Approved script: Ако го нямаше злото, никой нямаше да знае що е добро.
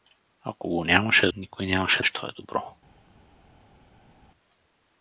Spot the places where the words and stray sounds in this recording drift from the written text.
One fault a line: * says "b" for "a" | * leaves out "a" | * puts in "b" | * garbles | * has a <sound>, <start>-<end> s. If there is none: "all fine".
* leaves out "злото"
* leaves out "да знае"